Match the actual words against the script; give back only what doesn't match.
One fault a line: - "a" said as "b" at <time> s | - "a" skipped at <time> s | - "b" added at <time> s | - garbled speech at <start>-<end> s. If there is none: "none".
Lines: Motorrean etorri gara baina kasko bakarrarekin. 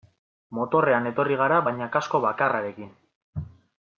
none